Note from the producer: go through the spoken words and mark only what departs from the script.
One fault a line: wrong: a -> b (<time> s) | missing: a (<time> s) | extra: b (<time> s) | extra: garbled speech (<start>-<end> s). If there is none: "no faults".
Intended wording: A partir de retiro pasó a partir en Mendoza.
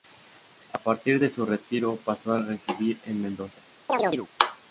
extra: su (1.3 s)
wrong: partir -> residir (2.4 s)